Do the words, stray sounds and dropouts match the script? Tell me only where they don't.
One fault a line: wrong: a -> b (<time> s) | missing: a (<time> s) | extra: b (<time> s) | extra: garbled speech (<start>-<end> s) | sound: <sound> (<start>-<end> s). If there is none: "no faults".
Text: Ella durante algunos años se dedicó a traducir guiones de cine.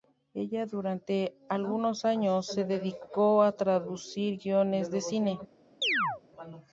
sound: chirp (5.8-6.2 s)